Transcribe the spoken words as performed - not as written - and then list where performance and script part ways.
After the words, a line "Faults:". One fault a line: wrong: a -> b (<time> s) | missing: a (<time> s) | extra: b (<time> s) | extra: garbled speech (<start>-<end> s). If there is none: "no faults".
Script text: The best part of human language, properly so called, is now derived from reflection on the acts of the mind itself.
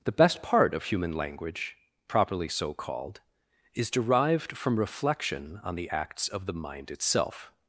The best part of human language, properly so called, is derived from reflection on the acts of the mind itself.
Faults:
missing: now (3.9 s)